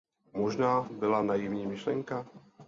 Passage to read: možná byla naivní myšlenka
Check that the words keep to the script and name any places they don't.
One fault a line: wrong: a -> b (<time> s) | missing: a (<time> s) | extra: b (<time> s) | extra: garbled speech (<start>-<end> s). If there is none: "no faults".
no faults